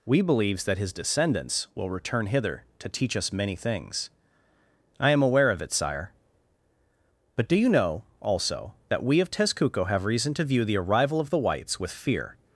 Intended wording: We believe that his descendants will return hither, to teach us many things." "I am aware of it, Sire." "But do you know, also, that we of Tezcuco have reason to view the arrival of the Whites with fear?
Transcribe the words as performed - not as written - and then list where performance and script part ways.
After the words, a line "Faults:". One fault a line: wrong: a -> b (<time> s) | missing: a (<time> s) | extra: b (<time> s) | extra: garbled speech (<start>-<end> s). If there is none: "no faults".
We believes that his descendants will return hither, to teach us many things." "I am aware of it, Sire." "But do you know, also, that we of Tezcuco have reason to view the arrival of the Whites with fear?
Faults:
wrong: believe -> believes (0.2 s)